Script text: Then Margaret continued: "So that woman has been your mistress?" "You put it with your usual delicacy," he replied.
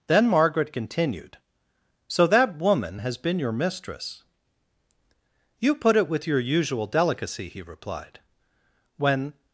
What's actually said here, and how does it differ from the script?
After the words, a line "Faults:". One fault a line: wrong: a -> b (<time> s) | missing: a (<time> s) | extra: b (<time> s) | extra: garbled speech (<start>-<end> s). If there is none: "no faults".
Then Margaret continued: "So that woman has been your mistress?" "You put it with your usual delicacy," he replied. "When
Faults:
extra: When (9.0 s)